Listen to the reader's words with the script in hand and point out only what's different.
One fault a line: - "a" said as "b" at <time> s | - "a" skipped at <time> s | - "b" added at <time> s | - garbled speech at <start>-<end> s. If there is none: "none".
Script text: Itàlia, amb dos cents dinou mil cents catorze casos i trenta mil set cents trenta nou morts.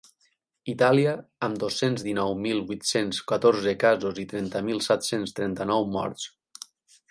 - "vuit" added at 2.7 s